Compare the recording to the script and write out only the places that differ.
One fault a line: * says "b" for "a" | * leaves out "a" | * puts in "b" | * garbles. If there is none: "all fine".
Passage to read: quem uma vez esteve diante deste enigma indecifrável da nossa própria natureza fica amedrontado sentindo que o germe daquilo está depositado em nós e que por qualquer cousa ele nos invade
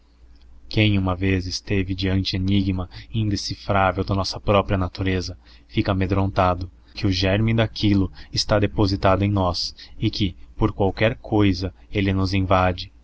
* leaves out "deste"
* leaves out "sentindo"